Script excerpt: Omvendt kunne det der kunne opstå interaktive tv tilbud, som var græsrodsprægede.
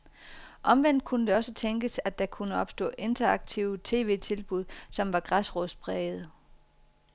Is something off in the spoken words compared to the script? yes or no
yes